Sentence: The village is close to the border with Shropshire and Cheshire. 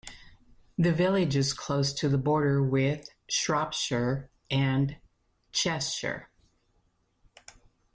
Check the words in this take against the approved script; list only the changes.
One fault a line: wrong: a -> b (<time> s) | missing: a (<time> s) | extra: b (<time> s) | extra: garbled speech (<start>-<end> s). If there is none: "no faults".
no faults